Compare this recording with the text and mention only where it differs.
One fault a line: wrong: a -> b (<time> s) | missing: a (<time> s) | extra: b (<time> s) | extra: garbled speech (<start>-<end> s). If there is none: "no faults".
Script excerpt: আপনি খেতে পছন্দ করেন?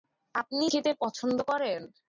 no faults